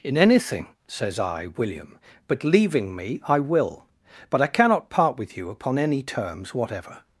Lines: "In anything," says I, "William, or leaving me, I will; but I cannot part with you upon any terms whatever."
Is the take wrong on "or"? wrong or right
wrong